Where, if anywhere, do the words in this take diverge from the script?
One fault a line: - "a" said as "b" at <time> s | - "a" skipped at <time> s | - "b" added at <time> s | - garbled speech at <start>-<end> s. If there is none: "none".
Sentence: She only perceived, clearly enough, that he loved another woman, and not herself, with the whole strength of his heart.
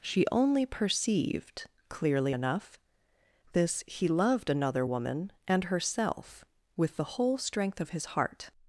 - "that" said as "this" at 3.5 s
- "not" skipped at 5.6 s